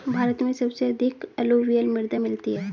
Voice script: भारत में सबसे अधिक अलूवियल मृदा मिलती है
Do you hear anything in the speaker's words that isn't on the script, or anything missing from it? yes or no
no